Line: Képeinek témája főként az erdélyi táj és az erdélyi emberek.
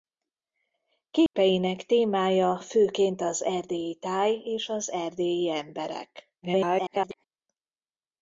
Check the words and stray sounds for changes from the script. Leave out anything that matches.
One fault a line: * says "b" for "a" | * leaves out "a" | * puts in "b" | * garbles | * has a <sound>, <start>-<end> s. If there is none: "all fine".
* has a dropout, 1.3-1.3 s
* garbles